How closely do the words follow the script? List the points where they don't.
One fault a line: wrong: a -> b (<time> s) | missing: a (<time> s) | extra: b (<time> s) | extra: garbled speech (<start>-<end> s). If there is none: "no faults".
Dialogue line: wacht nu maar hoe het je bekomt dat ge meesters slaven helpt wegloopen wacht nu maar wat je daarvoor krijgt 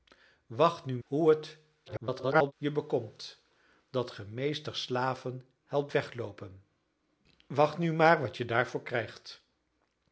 missing: maar (1.0 s)
extra: garbled speech (1.9-2.5 s)